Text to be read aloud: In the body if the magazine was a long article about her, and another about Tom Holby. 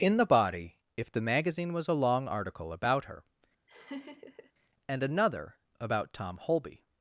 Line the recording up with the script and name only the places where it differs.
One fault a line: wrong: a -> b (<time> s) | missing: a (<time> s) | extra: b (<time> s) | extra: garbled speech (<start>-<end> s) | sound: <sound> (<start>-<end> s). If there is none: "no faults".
sound: laugh (3.7-4.5 s)